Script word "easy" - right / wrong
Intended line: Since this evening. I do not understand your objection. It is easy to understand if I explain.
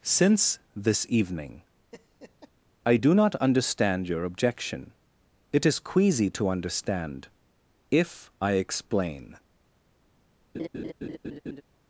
wrong